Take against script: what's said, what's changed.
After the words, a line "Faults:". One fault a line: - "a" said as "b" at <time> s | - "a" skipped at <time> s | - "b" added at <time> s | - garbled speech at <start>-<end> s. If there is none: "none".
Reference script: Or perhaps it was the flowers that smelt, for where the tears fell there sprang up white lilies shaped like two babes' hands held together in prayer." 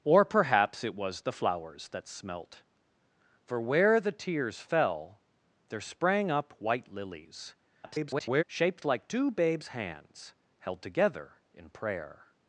Or perhaps it was the flowers that smelt, for where the tears fell there sprang up white lilies [garbled] shaped like two babes' hands held together in prayer."
Faults:
- garbled speech at 7.8-8.4 s